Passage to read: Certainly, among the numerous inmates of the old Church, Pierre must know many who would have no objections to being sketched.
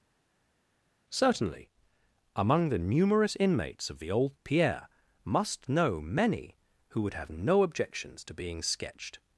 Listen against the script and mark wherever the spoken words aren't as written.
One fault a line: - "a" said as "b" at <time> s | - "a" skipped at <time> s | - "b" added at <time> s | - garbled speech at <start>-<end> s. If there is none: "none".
- "Church" skipped at 4.4 s